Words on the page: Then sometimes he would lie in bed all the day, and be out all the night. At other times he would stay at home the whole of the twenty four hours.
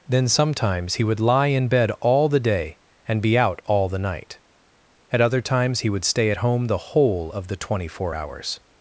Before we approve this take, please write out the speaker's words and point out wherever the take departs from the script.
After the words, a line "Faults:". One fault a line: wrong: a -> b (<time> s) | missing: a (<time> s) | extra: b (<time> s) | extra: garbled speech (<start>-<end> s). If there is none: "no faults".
Then sometimes he would lie in bed all the day, and be out all the night. At other times he would stay at home the whole of the twenty four hours.
Faults:
no faults